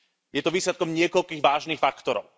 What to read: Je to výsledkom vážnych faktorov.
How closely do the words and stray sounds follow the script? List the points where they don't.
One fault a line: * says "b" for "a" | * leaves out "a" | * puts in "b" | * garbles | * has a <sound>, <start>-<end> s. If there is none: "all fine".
* puts in "niekoľkých"